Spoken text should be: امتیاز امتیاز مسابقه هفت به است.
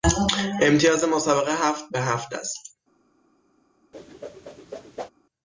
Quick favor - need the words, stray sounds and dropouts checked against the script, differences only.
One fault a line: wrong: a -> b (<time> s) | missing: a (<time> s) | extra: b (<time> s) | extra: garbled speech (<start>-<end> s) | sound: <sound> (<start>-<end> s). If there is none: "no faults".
missing: امتیاز (1.0 s)
extra: هفت (2.0 s)
sound: whoosh (3.9-5.1 s)